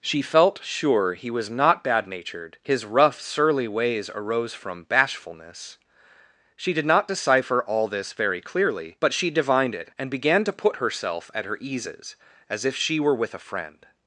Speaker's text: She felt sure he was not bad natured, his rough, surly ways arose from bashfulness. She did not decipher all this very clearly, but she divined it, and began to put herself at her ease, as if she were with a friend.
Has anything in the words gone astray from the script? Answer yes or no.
yes